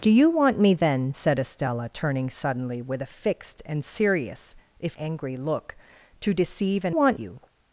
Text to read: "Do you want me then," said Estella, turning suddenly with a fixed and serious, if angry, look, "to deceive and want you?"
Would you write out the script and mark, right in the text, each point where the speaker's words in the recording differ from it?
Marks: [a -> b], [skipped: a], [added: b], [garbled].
"Do you want me then," said Estella, turning suddenly with a fixed and serious, if angry, look, "to deceive and want you?"